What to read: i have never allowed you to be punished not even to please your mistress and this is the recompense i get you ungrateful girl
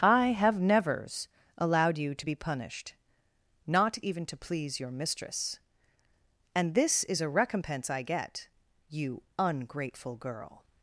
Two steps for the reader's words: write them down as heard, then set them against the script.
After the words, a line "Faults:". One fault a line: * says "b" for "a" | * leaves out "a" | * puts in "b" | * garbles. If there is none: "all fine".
i have nevers allowed you to be punished not even to please your mistress and this is a recompense i get you ungrateful girl
Faults:
* says "nevers" for "never"
* says "a" for "the"